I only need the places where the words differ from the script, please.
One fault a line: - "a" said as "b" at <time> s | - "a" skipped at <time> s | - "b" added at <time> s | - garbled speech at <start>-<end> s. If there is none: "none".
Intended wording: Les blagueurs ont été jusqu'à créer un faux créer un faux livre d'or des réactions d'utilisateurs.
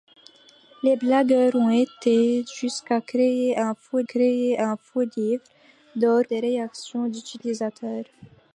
none